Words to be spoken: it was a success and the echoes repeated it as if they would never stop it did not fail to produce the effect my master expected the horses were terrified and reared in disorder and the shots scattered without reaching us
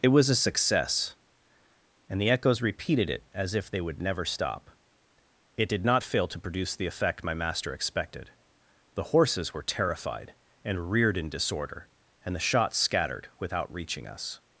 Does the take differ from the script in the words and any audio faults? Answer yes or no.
no